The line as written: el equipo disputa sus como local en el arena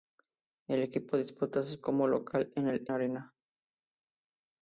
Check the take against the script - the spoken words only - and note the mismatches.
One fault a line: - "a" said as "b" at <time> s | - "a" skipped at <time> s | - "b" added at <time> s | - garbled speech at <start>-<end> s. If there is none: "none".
none